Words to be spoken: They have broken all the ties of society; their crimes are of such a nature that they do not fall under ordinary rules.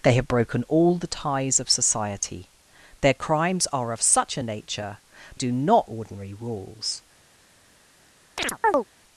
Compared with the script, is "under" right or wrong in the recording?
wrong